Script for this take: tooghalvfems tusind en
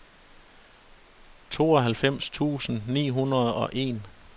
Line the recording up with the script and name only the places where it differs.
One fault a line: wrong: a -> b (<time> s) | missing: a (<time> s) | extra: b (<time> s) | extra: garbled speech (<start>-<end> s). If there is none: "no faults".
extra: ni hundrede og (2.9 s)